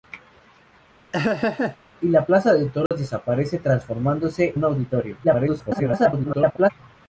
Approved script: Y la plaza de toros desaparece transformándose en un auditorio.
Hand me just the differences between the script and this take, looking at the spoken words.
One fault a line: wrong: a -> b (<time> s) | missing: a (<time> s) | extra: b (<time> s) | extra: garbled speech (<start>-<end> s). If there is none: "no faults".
missing: en (4.6 s)
extra: garbled speech (5.2-6.7 s)